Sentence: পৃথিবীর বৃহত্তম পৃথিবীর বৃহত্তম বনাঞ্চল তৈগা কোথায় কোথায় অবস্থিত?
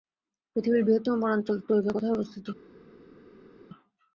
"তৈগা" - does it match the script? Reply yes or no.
yes